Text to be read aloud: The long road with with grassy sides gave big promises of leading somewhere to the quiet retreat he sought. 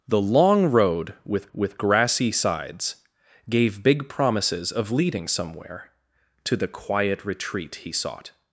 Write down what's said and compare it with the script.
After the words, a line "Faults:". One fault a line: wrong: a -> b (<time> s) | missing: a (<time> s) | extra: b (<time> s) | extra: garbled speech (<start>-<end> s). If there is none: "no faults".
The long road with with grassy sides gave big promises of leading somewhere to the quiet retreat he sought.
Faults:
no faults